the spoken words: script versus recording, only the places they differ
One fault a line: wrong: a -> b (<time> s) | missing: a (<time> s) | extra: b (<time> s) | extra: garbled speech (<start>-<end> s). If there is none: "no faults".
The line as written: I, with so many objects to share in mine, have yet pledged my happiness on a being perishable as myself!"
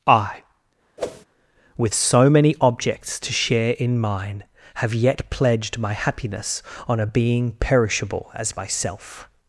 no faults